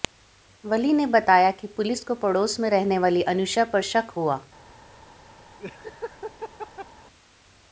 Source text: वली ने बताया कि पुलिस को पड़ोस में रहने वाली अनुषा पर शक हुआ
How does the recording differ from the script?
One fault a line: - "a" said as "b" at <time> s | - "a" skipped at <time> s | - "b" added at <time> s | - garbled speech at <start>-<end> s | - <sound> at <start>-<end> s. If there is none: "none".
- laugh at 5.6-6.9 s